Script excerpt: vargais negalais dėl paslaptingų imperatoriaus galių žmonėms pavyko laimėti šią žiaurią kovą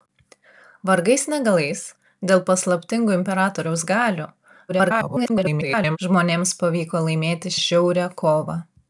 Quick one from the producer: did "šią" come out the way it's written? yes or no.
no